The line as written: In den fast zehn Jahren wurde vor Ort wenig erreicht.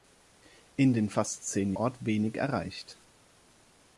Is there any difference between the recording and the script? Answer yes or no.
yes